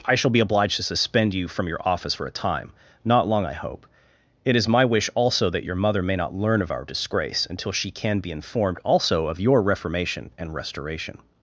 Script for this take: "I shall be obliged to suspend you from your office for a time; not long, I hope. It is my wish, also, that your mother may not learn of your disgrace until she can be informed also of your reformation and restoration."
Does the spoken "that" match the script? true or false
true